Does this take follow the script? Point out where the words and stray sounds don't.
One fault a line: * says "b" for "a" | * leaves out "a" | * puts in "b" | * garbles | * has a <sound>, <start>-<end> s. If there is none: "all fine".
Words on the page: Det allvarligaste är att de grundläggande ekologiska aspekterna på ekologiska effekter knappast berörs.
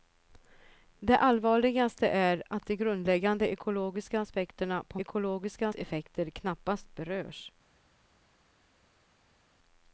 all fine